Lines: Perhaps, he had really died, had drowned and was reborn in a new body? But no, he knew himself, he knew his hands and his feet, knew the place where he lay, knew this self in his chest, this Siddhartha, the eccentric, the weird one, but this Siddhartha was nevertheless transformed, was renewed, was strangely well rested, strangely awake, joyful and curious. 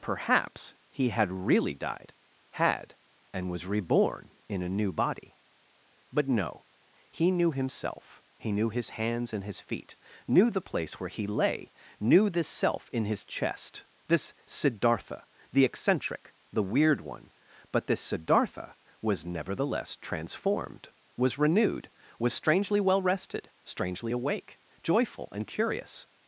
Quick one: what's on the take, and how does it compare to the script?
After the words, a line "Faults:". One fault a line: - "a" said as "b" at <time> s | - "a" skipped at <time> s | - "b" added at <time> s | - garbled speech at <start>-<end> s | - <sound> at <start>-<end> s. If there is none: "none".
Perhaps, he had really died, had and was reborn in a new body? But no, he knew himself, he knew his hands and his feet, knew the place where he lay, knew this self in his chest, this Siddhartha, the eccentric, the weird one, but this Siddhartha was nevertheless transformed, was renewed, was strangely well rested, strangely awake, joyful and curious.
Faults:
- "drowned" skipped at 3.0 s